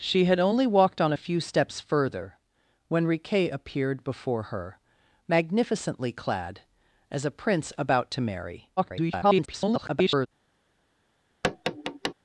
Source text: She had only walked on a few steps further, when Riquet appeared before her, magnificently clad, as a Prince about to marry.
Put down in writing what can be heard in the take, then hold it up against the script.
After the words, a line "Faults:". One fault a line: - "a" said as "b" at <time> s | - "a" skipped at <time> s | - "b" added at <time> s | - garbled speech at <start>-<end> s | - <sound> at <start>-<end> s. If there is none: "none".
She had only walked on a few steps further, when Riquet appeared before her, magnificently clad, as a Prince about to marry. [garbled]
Faults:
- garbled speech at 8.8-10.3 s
- tap at 11.4-12.1 s